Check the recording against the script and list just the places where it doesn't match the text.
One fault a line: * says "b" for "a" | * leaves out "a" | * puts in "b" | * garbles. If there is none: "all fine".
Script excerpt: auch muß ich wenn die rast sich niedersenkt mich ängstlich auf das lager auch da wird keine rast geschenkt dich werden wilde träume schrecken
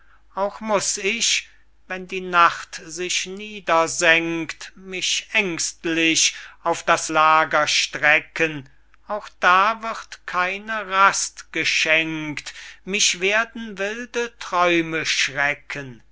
* says "nacht" for "rast"
* puts in "strecken"
* says "mich" for "dich"